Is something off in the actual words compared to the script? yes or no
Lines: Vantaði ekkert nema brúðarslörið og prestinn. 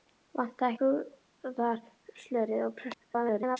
yes